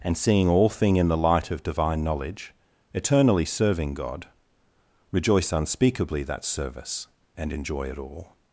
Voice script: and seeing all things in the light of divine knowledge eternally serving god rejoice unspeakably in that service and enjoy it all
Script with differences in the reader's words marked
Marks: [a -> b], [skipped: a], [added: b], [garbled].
and seeing all [things -> thing] in the light of divine knowledge eternally serving god rejoice unspeakably [skipped: in] that service and enjoy it all